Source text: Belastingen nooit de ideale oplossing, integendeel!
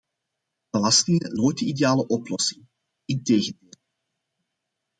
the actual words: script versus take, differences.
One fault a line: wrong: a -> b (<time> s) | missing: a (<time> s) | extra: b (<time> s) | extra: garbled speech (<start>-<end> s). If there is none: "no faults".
no faults